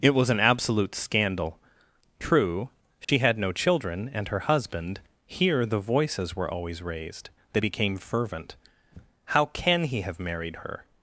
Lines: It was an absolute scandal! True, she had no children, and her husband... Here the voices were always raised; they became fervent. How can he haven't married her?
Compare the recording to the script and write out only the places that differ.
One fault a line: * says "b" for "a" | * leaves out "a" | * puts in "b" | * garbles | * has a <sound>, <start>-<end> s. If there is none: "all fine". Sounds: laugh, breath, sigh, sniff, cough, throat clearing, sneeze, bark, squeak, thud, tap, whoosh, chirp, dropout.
* has a dropout, 3.0-3.1 s
* says "have" for "haven't"